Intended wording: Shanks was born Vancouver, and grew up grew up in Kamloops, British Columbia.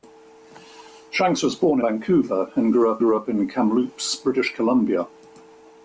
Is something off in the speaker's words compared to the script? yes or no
no